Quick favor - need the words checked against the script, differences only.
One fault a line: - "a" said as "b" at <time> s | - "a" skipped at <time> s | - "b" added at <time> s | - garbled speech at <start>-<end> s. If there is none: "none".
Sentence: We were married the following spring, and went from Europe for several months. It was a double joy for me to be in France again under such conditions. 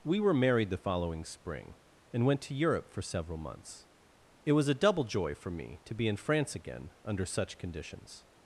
- "from" said as "to" at 2.4 s